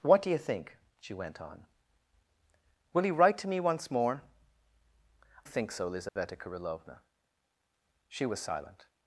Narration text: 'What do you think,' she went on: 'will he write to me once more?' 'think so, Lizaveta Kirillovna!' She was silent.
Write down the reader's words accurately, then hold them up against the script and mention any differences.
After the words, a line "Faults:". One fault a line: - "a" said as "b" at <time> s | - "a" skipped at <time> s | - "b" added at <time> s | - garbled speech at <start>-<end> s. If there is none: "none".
'What do you think,' she went on: 'will he write to me once more?' 'think so, Lizaveta Kirillovna!' She was silent.
Faults:
none